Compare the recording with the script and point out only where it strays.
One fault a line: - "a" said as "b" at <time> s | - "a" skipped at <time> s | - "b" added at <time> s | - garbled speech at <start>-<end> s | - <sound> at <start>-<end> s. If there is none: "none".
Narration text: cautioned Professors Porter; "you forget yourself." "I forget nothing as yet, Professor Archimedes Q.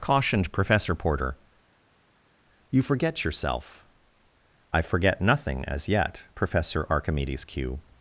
- "Professors" said as "Professor" at 0.5 s